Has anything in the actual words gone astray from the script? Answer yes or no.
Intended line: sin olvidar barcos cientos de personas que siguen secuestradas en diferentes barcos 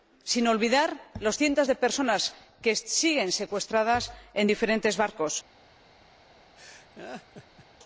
yes